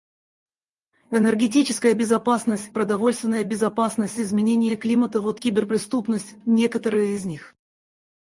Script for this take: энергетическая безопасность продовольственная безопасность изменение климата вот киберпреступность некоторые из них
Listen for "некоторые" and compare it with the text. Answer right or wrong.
right